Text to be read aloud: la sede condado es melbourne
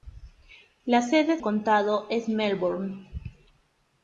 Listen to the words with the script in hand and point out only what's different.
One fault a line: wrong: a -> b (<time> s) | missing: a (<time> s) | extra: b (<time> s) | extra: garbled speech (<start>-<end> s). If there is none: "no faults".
no faults